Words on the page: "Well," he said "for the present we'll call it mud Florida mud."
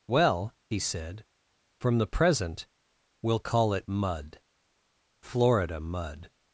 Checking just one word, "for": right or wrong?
wrong